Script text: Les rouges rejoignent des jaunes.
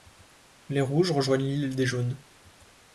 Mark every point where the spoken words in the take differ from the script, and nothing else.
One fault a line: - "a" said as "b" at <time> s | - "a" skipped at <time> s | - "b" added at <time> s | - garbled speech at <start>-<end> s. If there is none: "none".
- "l'île" added at 1.4 s